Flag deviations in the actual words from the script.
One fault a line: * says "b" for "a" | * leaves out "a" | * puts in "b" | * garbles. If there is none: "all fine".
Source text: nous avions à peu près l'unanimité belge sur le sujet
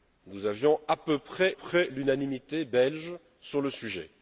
* puts in "près"